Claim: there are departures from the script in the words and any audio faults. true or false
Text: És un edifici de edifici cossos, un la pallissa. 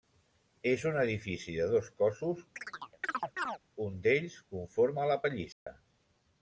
true